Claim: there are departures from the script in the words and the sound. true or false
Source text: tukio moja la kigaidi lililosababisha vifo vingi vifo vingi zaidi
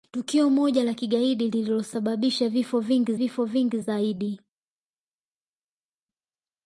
false